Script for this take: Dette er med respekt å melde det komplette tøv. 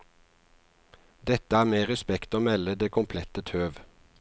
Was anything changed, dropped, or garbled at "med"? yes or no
no